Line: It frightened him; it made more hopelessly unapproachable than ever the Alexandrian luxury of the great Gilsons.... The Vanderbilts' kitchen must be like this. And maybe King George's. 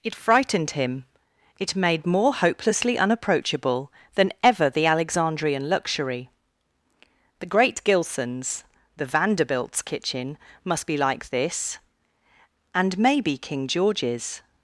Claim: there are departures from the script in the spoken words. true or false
true